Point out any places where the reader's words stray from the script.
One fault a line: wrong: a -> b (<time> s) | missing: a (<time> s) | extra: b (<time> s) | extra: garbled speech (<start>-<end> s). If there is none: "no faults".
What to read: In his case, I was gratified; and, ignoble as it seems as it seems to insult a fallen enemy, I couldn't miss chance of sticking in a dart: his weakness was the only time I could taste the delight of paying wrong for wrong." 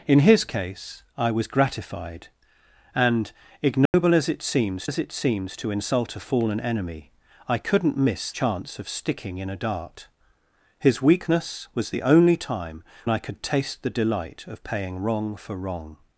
no faults